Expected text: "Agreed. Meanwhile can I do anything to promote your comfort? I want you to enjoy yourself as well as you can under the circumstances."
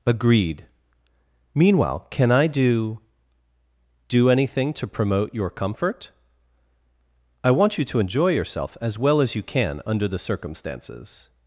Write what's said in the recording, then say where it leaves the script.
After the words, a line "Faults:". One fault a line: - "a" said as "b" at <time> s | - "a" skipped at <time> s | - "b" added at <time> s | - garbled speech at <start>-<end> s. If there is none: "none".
"Agreed. Meanwhile can I do do anything to promote your comfort? I want you to enjoy yourself as well as you can under the circumstances."
Faults:
- "do" added at 4.1 s